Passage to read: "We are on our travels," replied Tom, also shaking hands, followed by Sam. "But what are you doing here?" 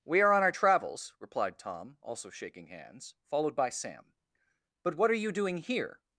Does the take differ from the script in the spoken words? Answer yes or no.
no